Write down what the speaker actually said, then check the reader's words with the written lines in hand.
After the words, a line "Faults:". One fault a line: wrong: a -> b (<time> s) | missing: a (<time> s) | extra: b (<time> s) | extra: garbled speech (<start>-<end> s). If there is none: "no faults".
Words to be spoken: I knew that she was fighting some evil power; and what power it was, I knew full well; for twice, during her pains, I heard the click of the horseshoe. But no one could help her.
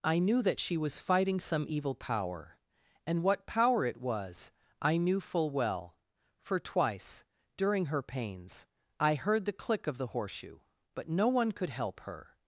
I knew that she was fighting some evil power; and what power it was, I knew full well; for twice, during her pains, I heard the click of the horseshoe. But no one could help her.
Faults:
no faults